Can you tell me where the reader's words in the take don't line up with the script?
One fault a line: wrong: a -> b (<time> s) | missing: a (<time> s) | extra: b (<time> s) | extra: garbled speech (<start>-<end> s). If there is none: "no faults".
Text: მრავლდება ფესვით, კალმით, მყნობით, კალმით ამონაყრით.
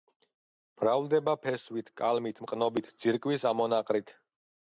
wrong: კალმით -> ძირკვის (3.1 s)